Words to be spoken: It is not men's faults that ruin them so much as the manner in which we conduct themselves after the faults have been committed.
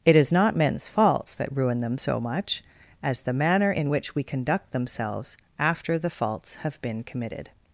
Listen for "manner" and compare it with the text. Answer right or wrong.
right